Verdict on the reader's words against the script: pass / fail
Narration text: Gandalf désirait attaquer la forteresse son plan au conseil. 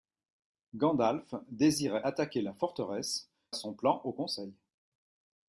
pass